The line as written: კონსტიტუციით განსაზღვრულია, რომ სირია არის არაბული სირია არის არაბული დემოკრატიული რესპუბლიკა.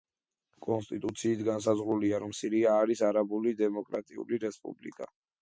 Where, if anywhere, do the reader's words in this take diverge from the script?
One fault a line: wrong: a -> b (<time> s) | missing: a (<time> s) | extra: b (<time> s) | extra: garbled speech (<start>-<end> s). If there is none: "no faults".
missing: სირია არის არაბული (3.6 s)